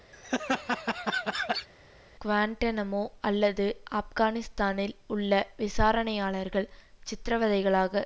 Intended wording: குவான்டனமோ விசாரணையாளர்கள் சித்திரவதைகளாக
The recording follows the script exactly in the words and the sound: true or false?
false